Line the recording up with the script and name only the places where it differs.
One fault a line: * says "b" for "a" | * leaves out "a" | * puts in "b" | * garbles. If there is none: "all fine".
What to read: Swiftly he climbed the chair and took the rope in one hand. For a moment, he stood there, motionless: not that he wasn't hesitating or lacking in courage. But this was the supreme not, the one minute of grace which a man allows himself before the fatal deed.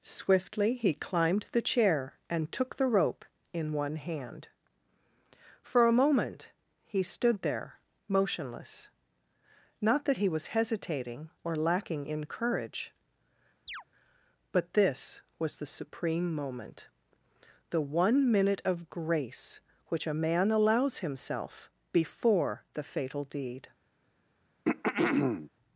* says "was" for "wasn't"
* says "moment" for "not"